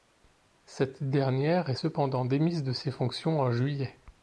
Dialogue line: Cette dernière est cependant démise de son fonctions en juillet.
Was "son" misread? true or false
true